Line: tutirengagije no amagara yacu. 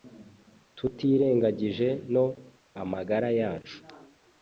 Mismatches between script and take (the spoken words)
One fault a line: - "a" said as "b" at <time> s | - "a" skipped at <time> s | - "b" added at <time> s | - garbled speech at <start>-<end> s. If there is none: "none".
none